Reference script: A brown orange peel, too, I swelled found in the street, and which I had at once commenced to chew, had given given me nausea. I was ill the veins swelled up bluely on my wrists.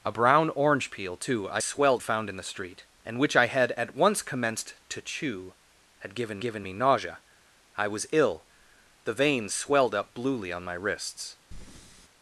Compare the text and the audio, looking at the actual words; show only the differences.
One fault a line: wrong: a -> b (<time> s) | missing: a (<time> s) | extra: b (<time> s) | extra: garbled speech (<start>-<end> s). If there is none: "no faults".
no faults